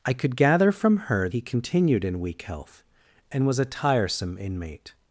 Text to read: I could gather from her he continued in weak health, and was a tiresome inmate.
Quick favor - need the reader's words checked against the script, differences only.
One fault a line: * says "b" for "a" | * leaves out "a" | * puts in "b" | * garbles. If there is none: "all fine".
all fine